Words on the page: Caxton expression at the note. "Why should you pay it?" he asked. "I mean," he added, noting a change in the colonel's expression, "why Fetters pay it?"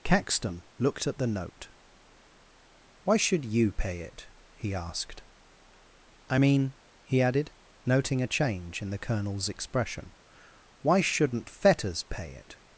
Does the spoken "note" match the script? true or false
true